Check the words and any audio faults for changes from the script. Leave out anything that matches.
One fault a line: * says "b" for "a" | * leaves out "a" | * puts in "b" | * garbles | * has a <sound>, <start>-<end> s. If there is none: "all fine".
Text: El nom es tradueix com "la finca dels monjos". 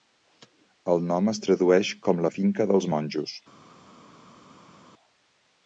all fine